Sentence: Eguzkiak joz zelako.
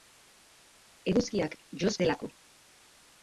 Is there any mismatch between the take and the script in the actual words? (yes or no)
no